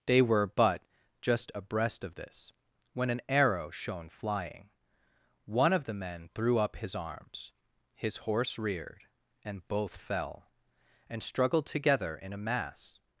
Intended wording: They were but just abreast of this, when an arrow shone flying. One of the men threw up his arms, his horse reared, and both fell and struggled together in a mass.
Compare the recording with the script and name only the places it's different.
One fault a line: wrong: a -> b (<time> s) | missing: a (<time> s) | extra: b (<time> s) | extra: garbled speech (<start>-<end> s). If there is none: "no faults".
no faults